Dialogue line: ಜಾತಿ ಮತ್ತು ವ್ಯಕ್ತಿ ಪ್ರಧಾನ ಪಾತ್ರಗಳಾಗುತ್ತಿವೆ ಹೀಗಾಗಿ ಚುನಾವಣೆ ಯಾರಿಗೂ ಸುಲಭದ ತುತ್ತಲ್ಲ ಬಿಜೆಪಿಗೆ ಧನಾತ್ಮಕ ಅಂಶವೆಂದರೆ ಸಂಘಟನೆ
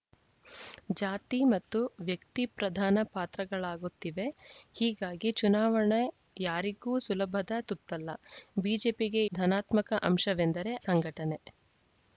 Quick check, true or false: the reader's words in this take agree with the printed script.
true